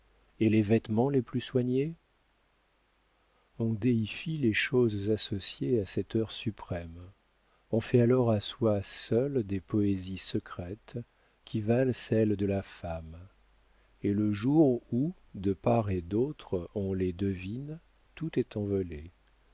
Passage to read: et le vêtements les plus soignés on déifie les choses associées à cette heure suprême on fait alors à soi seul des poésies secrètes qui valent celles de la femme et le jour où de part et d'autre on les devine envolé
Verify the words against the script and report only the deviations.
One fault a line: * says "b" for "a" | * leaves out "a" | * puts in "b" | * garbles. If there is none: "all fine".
* says "les" for "le"
* puts in "tout est"